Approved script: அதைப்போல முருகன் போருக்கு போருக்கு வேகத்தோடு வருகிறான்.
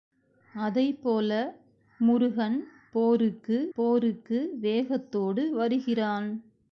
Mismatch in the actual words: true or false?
false